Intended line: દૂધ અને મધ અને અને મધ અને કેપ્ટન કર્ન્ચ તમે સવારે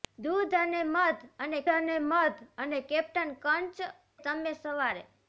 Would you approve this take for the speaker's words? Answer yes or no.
yes